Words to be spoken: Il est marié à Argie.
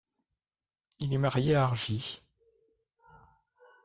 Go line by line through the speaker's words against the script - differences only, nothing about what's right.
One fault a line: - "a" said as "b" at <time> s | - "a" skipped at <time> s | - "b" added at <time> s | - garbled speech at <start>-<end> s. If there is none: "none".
none